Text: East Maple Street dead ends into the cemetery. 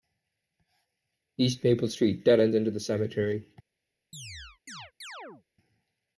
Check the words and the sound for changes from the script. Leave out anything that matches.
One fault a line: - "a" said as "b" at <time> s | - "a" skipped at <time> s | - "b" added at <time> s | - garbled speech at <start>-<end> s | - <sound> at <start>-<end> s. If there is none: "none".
- chirp at 4.1-5.4 s